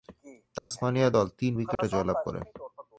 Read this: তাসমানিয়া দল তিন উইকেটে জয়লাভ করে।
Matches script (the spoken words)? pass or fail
pass